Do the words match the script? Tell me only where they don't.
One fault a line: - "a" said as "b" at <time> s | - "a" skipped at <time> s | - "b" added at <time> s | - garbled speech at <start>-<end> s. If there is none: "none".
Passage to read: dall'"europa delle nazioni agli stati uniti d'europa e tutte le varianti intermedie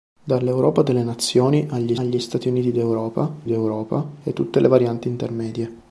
- "agli" added at 1.9 s
- "d'europa" added at 3.4 s